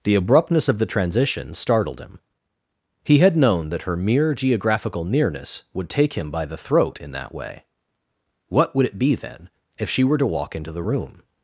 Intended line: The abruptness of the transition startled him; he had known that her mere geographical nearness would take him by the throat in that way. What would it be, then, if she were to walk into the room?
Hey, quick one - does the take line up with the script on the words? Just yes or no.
yes